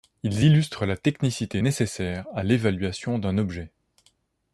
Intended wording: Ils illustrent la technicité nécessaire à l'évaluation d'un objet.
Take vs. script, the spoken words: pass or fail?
pass